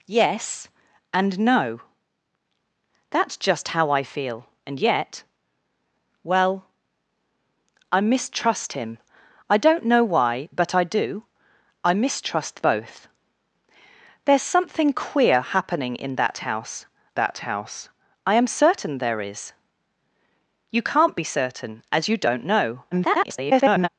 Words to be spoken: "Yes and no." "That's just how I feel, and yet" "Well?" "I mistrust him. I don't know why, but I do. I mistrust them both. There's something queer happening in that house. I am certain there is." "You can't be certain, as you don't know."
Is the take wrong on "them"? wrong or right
wrong